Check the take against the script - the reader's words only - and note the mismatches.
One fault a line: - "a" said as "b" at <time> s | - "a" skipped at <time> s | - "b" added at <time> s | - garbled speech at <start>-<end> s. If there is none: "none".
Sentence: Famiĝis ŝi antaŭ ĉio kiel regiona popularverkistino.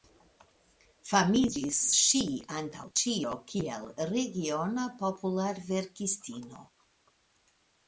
none